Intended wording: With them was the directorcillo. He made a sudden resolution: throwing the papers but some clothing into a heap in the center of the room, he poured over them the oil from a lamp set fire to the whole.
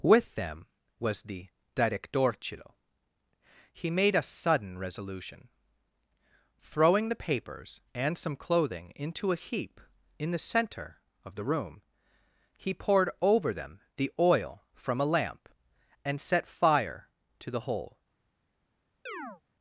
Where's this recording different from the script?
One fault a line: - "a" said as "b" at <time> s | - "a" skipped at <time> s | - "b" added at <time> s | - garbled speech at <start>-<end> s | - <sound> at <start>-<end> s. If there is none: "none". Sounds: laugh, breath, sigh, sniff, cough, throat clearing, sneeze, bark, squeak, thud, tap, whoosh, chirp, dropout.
- "but" said as "and" at 7.9 s
- "and" added at 16.0 s
- chirp at 19.1-19.4 s